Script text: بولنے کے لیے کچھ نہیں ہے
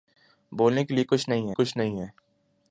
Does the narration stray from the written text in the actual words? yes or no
yes